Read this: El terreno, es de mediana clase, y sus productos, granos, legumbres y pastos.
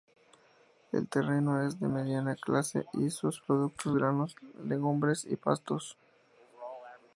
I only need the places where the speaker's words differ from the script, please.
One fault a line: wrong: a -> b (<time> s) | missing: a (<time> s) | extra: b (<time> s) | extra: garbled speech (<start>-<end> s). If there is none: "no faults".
no faults